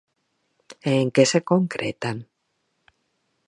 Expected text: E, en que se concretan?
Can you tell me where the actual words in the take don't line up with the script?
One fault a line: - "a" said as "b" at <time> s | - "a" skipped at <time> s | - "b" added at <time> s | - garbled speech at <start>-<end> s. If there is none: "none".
none